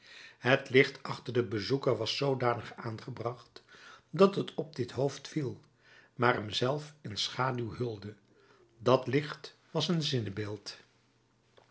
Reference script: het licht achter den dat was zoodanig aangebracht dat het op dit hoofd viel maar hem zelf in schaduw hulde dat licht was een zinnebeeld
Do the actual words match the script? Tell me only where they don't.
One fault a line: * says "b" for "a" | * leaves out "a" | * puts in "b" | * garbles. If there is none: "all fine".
* says "bezoeker" for "dat"